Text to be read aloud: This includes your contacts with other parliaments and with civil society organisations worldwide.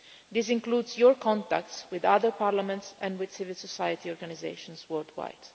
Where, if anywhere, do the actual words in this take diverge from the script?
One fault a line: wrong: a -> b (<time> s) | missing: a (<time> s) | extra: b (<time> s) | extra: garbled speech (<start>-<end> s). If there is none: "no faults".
no faults